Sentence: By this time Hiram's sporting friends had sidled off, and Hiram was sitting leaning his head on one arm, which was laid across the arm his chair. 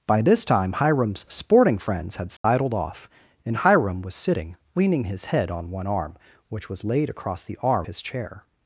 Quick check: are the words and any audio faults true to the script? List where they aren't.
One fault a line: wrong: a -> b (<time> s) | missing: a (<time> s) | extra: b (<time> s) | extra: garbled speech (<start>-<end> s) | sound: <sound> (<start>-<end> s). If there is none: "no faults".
sound: dropout (2.4-2.4 s)